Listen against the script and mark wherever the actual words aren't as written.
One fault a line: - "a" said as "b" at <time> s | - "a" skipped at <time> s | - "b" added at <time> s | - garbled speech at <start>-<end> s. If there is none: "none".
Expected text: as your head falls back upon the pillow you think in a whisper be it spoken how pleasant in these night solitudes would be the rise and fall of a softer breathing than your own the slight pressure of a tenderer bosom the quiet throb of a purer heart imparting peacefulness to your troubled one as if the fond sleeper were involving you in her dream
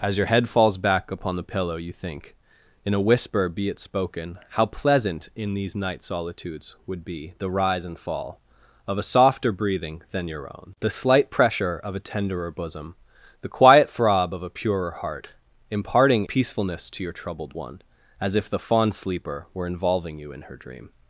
none